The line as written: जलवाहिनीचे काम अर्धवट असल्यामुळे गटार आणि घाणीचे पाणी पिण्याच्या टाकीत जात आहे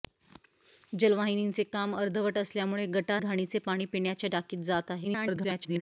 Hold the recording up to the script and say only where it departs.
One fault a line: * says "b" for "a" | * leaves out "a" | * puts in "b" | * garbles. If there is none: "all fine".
* leaves out "आणि"
* garbles